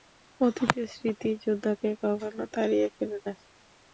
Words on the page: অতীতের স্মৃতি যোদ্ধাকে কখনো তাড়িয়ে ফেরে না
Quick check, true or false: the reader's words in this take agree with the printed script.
true